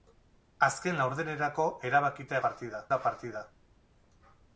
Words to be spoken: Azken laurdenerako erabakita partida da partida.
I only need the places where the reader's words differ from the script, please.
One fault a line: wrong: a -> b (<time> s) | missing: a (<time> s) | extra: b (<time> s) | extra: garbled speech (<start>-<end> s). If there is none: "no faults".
no faults